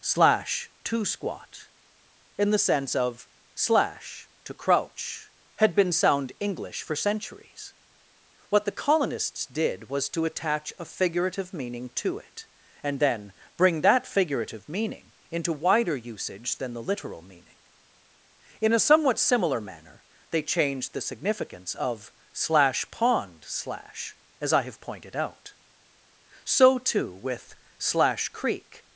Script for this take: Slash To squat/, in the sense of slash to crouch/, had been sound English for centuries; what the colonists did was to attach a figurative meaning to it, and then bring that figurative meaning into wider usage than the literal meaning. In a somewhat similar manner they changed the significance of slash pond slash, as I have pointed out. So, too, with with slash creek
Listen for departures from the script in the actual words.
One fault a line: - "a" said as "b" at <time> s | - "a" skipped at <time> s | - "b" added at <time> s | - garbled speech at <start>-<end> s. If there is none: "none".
- "with" skipped at 27.5 s